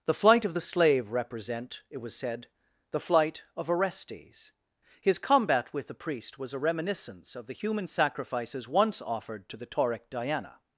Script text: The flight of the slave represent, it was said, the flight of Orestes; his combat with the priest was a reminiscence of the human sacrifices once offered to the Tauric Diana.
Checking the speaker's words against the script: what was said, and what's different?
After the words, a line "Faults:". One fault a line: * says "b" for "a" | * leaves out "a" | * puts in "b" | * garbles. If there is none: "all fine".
The flight of the slave represent, it was said, the flight of Orestes; his combat with the priest was a reminiscence of the human sacrifices once offered to the Tauric Diana.
Faults:
all fine